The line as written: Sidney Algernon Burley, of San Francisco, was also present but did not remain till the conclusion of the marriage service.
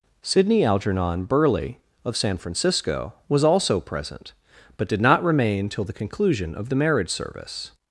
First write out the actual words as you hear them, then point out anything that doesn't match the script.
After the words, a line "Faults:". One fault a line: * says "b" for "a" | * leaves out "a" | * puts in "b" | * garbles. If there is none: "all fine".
Sidney Algernon Burley, of San Francisco, was also present but did not remain till the conclusion of the marriage service.
Faults:
all fine